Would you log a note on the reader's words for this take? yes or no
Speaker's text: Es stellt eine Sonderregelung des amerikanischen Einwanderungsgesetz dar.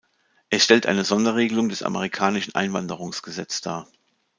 no